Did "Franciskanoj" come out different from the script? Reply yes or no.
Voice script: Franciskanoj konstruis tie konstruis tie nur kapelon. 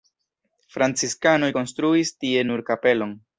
no